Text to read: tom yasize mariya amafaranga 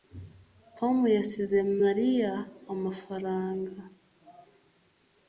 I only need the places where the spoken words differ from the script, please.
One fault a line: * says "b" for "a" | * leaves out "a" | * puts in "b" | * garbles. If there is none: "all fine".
all fine